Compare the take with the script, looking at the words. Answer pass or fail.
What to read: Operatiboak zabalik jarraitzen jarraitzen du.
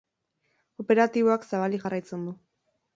fail